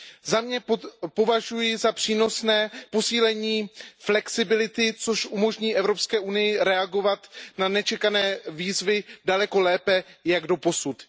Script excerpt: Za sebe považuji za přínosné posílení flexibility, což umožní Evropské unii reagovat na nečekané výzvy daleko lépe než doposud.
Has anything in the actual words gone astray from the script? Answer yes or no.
no